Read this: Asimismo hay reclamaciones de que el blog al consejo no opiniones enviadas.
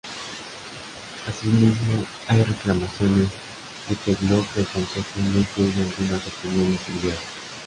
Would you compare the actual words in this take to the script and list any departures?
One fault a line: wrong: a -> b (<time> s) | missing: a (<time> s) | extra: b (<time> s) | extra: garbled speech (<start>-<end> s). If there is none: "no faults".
wrong: al -> del (4.5 s)
extra: incluye algunas (5.4 s)